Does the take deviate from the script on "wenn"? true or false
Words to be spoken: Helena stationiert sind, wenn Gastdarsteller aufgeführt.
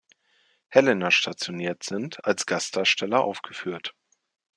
true